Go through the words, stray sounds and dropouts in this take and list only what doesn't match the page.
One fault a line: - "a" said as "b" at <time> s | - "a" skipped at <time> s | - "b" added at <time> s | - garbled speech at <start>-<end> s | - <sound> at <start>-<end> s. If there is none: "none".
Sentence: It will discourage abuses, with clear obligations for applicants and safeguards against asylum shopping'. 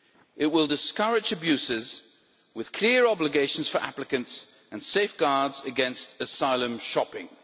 none